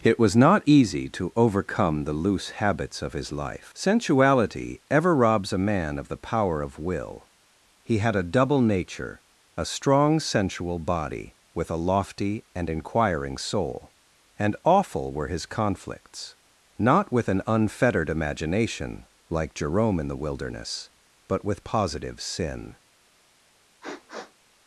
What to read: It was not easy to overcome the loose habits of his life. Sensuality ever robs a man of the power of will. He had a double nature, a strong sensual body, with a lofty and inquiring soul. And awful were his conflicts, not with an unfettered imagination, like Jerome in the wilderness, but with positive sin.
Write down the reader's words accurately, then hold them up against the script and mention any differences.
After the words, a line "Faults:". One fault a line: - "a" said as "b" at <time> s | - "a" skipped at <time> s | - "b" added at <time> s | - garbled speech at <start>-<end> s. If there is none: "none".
It was not easy to overcome the loose habits of his life. Sensuality ever robs a man of the power of will. He had a double nature, a strong sensual body, with a lofty and inquiring soul. And awful were his conflicts, not with an unfettered imagination, like Jerome in the wilderness, but with positive sin.
Faults:
none